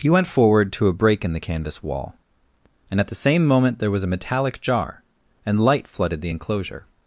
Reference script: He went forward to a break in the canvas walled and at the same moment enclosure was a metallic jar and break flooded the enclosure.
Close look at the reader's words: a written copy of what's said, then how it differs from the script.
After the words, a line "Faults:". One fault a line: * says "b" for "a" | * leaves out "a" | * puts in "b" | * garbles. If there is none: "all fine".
He went forward to a break in the canvas wall and at the same moment there was a metallic jar and light flooded the enclosure.
Faults:
* says "wall" for "walled"
* says "there" for "enclosure"
* says "light" for "break"